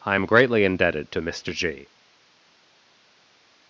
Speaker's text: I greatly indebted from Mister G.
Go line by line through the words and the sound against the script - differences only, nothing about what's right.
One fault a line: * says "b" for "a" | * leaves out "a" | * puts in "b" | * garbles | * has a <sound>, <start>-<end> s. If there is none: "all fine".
* puts in "am"
* says "to" for "from"